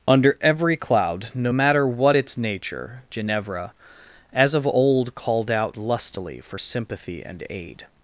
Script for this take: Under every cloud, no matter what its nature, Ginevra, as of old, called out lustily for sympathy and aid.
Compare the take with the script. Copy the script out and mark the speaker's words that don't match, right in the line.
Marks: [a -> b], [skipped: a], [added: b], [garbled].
Under every cloud, no matter what its nature, Ginevra, as of old, called out lustily for sympathy and aid.